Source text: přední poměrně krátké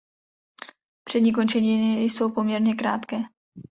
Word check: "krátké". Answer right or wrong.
right